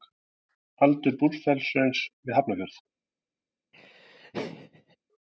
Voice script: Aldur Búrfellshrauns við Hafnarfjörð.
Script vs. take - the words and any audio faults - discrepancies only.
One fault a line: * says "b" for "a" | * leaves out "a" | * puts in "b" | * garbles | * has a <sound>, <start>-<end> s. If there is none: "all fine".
* has a laugh, 3.7-5.0 s